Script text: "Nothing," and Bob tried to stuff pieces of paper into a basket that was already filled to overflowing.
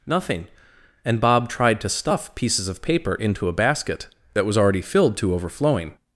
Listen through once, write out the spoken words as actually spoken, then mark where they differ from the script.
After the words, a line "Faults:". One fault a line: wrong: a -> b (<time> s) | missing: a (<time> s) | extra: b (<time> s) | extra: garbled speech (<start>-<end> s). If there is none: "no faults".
"Nothing," and Bob tried to stuff pieces of paper into a basket that was already filled to overflowing.
Faults:
no faults